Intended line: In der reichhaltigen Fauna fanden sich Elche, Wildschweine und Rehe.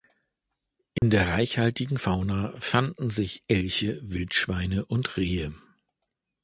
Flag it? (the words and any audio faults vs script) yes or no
yes